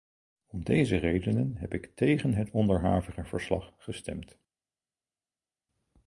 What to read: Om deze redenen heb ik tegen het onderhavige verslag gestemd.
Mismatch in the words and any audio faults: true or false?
false